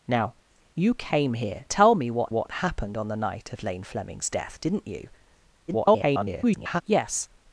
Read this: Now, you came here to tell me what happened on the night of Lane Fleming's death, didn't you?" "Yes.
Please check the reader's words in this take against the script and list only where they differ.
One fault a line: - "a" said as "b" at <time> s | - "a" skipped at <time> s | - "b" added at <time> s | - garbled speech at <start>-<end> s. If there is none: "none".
- "to" skipped at 1.6 s
- "what" added at 2.3 s
- garbled speech at 5.7-6.8 s